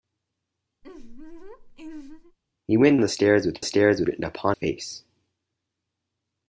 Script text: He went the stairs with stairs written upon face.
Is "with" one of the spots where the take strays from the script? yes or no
no